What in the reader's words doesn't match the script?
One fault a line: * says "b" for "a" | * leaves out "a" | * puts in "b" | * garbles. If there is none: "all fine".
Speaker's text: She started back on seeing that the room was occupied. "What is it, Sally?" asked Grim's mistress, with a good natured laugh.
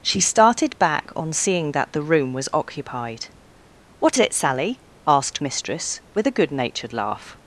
* leaves out "is"
* leaves out "Grim's"